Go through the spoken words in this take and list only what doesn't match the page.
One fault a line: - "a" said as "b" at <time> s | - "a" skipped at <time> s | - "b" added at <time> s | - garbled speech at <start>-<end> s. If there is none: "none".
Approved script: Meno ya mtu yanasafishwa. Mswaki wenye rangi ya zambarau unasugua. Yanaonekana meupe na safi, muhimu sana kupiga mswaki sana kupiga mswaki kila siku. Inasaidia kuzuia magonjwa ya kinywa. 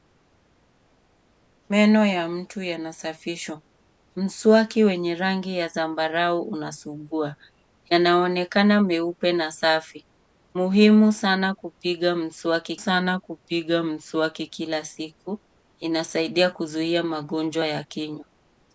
none